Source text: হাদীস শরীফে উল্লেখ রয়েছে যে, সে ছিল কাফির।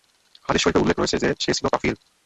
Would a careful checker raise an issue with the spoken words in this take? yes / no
no